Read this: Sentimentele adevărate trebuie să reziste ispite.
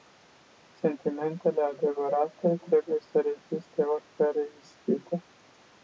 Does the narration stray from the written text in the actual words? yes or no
yes